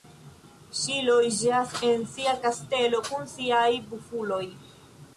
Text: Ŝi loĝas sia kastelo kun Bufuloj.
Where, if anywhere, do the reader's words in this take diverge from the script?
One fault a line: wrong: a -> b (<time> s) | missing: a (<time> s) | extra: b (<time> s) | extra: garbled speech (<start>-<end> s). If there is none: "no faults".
extra: en (1.9 s)
extra: siaj (3.4 s)